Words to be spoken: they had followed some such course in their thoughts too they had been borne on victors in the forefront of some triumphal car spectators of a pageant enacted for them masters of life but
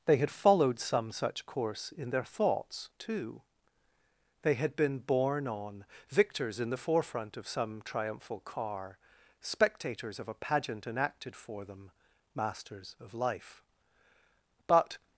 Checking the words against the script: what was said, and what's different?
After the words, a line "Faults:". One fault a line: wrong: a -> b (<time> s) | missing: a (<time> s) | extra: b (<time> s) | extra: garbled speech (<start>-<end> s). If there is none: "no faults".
they had followed some such course in their thoughts too they had been borne on victors in the forefront of some triumphal car spectators of a pageant enacted for them masters of life but
Faults:
no faults